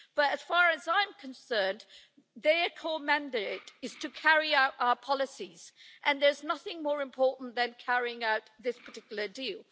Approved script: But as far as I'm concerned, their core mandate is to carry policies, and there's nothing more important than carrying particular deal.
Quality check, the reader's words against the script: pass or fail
fail